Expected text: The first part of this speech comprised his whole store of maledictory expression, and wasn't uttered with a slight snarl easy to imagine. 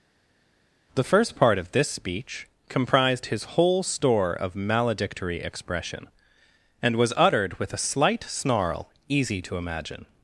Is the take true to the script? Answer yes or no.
no